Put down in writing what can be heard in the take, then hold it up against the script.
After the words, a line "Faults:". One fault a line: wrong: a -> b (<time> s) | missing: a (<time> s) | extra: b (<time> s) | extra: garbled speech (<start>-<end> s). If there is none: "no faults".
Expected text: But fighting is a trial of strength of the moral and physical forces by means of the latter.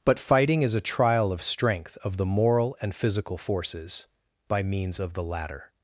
But fighting is a trial of strength of the moral and physical forces by means of the latter.
Faults:
no faults